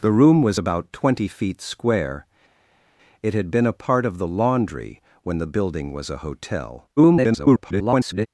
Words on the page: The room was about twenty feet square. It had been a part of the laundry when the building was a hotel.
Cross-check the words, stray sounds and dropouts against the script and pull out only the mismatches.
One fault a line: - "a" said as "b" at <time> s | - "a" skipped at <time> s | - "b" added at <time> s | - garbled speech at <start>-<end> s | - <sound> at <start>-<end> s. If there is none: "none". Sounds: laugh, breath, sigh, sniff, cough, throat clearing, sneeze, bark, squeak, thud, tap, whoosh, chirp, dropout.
- garbled speech at 7.0-8.3 s